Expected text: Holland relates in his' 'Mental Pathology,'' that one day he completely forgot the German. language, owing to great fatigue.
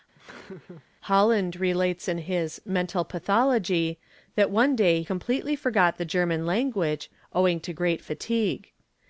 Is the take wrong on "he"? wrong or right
wrong